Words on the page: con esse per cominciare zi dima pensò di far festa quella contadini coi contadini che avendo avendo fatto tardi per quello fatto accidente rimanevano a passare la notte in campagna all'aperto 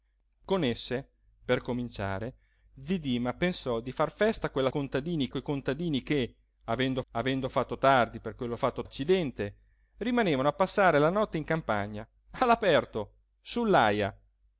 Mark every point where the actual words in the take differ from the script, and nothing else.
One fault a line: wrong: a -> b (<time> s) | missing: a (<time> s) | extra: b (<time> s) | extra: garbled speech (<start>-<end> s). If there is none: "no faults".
no faults